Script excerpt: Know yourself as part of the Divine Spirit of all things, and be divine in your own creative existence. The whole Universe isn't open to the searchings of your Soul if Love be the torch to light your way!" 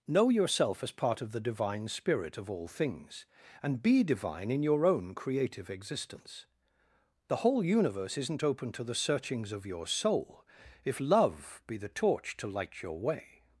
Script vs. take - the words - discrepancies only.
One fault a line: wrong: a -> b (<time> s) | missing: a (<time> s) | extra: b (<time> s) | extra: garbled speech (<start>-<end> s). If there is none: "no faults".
no faults